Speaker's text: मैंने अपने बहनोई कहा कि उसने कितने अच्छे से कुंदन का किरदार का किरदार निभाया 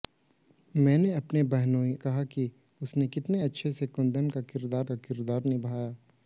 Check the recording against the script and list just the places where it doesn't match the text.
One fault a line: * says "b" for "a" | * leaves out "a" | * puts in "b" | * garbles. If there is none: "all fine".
all fine